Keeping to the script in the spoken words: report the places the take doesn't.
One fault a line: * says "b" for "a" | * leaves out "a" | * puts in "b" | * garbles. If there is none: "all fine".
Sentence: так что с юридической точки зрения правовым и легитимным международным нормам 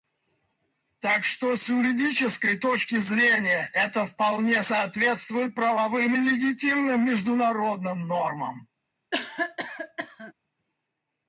* puts in "это вполне соответствует"